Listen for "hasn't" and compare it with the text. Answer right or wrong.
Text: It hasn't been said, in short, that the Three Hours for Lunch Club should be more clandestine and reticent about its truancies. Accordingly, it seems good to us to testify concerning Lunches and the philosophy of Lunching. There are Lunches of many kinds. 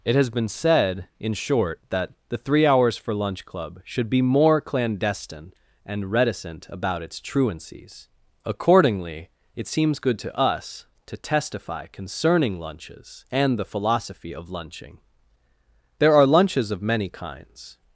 wrong